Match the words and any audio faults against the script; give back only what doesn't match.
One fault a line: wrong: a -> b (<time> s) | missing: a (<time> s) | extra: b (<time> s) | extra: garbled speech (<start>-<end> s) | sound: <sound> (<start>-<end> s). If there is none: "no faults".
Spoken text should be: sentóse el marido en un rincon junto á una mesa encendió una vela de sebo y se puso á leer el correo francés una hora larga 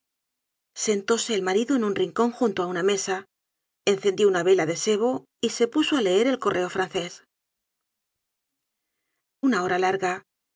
no faults